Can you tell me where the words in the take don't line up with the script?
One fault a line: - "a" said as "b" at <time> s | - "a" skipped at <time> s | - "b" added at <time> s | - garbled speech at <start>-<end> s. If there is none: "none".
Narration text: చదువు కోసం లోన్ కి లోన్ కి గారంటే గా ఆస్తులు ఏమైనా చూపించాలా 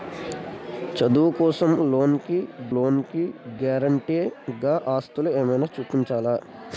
none